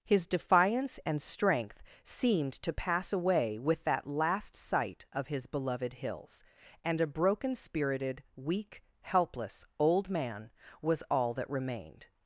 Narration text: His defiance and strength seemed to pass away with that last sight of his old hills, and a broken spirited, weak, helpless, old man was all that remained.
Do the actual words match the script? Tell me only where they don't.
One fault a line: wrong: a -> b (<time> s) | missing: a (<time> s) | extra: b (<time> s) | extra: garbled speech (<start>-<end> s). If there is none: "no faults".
wrong: old -> beloved (5.5 s)